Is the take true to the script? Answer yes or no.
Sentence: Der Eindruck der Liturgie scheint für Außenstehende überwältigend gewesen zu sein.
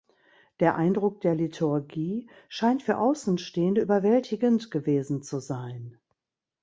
yes